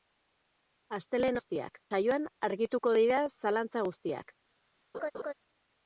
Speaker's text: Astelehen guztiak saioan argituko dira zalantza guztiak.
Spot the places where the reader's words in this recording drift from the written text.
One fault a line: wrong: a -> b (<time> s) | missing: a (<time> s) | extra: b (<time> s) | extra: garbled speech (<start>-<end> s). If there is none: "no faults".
no faults